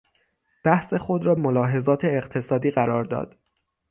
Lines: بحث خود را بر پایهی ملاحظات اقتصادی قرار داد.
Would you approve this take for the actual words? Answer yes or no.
no